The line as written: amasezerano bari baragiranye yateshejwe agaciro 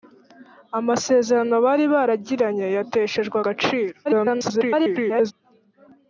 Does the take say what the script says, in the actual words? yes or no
no